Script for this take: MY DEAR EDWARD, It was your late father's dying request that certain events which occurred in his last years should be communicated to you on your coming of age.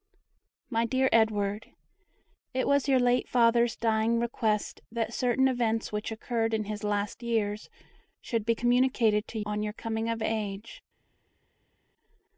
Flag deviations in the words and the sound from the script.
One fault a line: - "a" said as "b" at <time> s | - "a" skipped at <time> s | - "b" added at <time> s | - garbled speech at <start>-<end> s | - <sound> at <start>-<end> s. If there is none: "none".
- "you" skipped at 9.4 s